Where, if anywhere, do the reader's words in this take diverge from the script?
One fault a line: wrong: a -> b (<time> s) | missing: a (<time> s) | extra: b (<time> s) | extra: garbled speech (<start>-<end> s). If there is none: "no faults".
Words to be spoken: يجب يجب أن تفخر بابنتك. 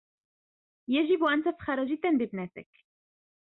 missing: يجب (1.2 s)
extra: جدا (1.8 s)